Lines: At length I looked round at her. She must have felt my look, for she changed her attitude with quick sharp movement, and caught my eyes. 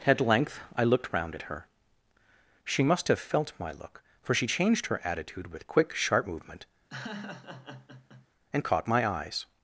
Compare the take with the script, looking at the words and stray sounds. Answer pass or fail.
fail